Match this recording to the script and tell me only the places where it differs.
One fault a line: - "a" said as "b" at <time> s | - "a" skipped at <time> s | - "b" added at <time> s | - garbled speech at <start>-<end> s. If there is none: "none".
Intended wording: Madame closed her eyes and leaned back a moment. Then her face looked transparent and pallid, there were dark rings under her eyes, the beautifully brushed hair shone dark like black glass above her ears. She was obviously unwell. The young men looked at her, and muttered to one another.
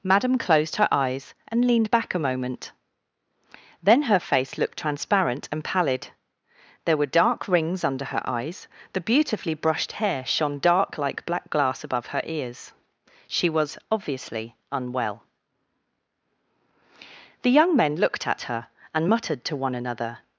none